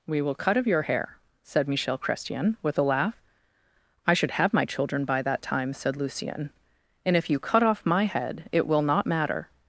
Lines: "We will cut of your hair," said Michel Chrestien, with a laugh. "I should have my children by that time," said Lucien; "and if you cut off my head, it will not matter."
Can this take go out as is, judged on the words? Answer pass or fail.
pass